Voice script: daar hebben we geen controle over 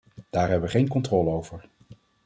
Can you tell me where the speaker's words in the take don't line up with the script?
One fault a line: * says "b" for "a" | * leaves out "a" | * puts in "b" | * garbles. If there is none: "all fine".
all fine